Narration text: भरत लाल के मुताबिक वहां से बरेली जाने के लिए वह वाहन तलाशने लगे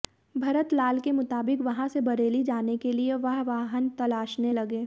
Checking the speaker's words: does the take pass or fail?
pass